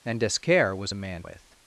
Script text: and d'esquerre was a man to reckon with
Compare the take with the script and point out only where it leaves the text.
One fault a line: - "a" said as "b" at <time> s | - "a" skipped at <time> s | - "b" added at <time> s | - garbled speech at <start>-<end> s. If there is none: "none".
- "to reckon" skipped at 1.2 s